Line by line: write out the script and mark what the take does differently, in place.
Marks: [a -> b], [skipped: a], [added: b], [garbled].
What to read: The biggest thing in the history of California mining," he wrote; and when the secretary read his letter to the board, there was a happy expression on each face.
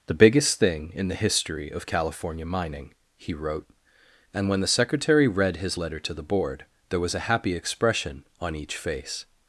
The biggest thing in the history of California mining," he wrote; and when the secretary read his letter to the board, there was a happy expression on each face.